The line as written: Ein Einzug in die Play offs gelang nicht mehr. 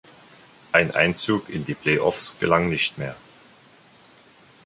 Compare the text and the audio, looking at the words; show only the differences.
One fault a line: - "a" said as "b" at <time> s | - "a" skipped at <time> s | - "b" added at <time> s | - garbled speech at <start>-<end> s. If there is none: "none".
none